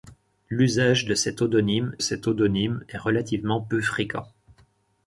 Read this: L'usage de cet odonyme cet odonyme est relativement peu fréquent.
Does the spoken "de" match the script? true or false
true